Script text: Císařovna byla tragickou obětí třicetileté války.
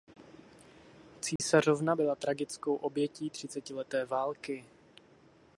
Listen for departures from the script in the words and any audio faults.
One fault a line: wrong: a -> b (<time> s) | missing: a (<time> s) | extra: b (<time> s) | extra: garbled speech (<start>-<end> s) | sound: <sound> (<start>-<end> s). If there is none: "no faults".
sound: dropout (1.4-1.4 s)